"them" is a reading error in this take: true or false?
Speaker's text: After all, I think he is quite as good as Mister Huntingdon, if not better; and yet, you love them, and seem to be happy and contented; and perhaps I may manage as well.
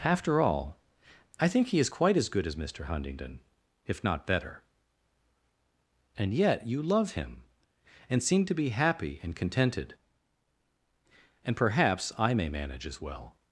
true